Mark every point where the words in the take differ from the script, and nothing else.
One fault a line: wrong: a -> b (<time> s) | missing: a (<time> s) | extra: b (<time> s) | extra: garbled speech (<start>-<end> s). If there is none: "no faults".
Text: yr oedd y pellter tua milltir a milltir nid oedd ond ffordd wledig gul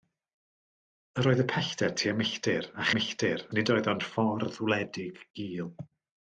no faults